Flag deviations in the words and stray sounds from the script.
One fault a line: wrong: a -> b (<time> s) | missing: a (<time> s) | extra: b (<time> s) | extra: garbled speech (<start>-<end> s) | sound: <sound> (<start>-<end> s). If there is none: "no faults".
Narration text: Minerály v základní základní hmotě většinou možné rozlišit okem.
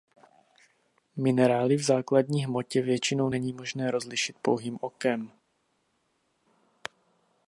missing: základní (2.5 s)
extra: není (3.3 s)
extra: pouhým (4.4 s)